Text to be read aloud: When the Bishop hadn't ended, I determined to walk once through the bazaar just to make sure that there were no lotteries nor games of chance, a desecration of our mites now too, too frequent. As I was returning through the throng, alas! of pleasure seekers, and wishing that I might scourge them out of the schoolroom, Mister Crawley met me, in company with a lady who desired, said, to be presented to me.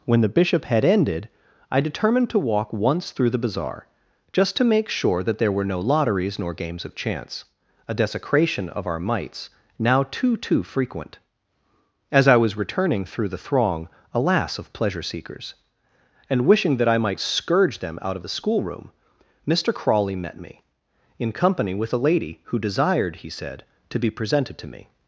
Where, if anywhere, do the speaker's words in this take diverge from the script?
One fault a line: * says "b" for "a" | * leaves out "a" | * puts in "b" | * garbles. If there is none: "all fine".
* says "had" for "hadn't"
* puts in "he"